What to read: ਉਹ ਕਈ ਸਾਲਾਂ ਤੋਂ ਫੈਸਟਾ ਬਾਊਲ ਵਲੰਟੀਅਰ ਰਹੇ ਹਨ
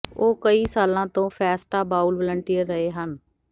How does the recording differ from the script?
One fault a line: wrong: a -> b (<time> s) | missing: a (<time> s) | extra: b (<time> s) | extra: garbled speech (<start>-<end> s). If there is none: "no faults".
no faults